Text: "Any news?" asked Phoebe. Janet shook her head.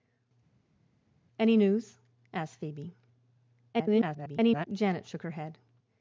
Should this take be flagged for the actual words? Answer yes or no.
yes